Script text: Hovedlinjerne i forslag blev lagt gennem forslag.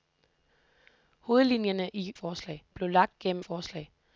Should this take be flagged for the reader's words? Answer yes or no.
no